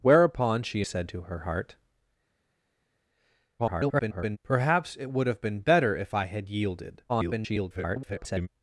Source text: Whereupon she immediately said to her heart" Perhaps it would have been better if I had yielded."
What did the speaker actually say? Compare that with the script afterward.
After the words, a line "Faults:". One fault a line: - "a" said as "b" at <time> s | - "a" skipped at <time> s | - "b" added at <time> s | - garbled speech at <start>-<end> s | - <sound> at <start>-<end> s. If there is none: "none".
Whereupon she said to her heart" [garbled] Perhaps it would have been better if I had yielded." [garbled]
Faults:
- "immediately" skipped at 0.8 s
- garbled speech at 3.6-4.4 s
- garbled speech at 7.1-8.5 s